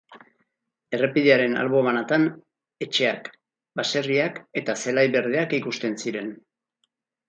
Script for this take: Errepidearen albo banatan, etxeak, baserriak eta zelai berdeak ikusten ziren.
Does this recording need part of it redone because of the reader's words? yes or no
no